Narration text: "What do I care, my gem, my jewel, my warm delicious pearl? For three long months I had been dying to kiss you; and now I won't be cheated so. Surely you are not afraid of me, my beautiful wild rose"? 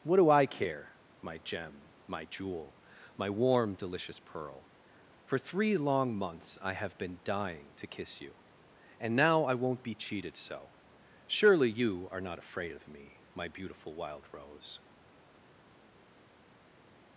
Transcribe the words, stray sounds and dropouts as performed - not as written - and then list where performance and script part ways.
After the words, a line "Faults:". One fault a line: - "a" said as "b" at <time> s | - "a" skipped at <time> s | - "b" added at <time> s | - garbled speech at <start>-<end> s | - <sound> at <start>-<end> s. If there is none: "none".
"What do I care, my gem, my jewel, my warm delicious pearl? For three long months I have been dying to kiss you; and now I won't be cheated so. Surely you are not afraid of me, my beautiful wild rose"?
Faults:
- "had" said as "have" at 6.7 s